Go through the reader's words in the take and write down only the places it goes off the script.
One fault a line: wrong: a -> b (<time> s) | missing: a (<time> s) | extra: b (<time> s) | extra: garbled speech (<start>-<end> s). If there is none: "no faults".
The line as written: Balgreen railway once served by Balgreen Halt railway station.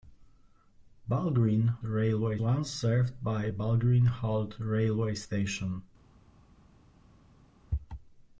no faults